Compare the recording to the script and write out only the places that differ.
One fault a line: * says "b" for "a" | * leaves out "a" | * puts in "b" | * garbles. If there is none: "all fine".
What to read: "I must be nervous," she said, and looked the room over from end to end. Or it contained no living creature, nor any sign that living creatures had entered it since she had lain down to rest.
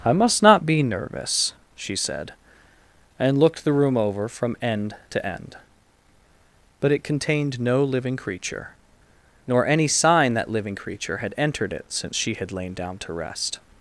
* puts in "not"
* says "But" for "Or"
* says "creature" for "creatures"